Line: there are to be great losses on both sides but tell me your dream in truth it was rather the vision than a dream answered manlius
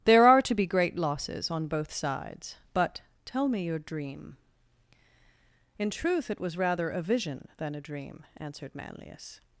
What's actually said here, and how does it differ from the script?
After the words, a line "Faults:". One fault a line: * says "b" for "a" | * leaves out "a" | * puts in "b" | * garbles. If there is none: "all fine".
there are to be great losses on both sides but tell me your dream in truth it was rather a vision than a dream answered manlius
Faults:
* says "a" for "the"